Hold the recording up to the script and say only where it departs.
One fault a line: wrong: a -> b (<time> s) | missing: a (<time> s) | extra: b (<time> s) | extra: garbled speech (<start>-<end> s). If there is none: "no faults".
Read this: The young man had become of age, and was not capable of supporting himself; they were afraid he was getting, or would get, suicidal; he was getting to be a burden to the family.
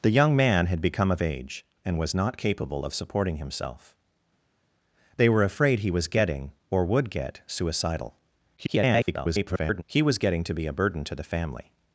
extra: garbled speech (8.6-9.8 s)